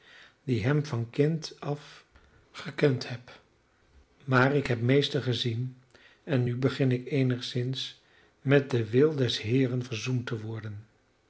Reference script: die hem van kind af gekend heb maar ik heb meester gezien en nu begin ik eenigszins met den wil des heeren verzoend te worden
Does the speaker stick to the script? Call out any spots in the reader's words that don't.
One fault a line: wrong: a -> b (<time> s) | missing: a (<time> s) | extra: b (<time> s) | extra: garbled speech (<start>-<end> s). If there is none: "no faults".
no faults